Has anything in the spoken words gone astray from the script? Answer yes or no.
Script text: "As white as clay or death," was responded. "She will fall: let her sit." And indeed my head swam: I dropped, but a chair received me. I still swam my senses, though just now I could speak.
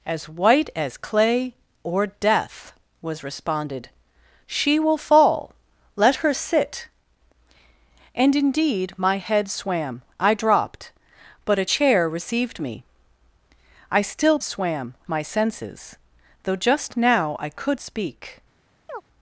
no